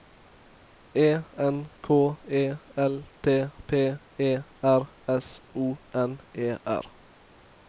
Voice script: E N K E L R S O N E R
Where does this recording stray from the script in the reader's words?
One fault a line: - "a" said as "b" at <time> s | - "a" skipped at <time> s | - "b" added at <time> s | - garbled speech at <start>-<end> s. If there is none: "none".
- "T P E" added at 3.2 s